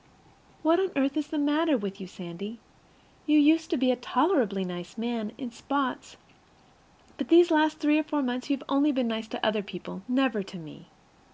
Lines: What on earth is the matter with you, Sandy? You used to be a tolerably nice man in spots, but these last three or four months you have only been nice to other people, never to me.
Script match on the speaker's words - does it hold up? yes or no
yes